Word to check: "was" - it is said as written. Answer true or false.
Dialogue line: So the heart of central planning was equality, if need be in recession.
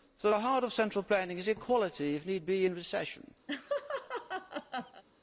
false